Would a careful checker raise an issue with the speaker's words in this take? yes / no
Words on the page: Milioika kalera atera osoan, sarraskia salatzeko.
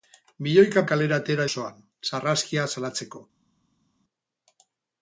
no